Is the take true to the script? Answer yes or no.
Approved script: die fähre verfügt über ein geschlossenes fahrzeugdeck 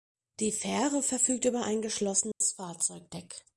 yes